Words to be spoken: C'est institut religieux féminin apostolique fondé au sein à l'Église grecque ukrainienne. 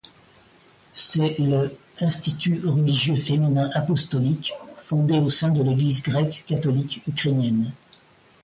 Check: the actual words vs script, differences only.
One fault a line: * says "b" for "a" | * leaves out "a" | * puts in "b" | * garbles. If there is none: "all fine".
* puts in "le"
* says "de" for "à"
* puts in "catholique"